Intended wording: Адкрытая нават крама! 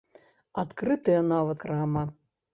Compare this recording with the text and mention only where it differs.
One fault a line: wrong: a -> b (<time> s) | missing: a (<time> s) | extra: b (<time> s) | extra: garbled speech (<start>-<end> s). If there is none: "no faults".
no faults